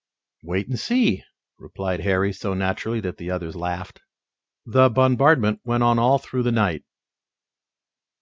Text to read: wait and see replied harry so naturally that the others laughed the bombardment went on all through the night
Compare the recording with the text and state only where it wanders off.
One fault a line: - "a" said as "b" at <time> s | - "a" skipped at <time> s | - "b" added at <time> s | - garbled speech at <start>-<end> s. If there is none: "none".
none